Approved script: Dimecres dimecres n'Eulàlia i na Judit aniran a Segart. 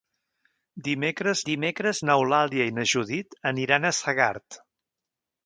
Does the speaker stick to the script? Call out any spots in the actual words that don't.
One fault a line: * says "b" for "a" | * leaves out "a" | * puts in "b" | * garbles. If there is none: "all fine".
all fine